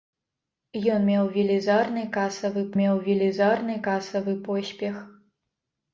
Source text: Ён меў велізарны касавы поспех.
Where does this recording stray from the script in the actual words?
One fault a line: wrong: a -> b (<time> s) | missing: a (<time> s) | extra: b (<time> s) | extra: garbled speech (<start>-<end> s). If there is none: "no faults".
extra: меў велізарны касавы (2.8 s)